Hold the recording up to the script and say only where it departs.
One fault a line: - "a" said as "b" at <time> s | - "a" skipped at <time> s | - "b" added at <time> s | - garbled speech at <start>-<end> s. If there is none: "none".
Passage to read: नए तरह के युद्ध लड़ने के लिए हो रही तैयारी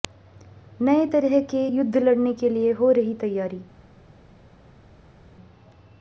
none